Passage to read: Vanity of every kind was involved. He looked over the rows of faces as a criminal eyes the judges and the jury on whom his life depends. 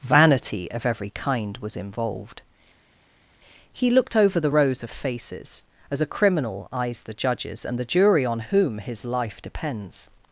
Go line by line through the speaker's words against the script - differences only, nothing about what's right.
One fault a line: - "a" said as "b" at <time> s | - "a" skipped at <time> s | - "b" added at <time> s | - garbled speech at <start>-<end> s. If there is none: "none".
none